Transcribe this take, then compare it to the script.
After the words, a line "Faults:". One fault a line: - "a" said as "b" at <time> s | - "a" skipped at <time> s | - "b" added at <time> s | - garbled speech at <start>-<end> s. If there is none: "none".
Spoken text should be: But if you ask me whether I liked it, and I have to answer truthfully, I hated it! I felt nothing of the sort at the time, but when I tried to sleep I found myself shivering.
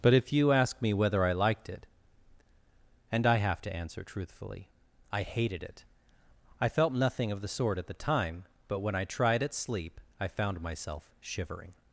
But if you ask me whether I liked it, and I have to answer truthfully, I hated it! I felt nothing of the sort at the time, but when I tried at sleep I found myself shivering.
Faults:
- "to" said as "at" at 9.4 s